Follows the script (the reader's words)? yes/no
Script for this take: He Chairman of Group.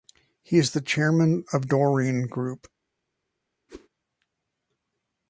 no